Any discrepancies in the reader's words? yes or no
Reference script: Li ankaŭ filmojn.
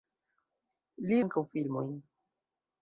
no